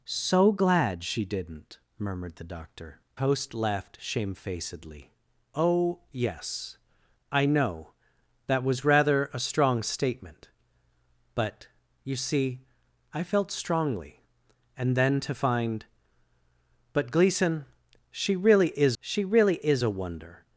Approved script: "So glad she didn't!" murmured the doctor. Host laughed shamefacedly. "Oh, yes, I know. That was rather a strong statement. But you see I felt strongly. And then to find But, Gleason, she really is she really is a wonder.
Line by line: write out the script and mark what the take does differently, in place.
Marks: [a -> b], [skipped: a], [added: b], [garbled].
"So glad she didn't!" murmured the doctor. Host laughed shamefacedly. "Oh, yes, I know. That was rather a strong statement. But you see I felt strongly. And then to find But, Gleason, she really is she really is a wonder.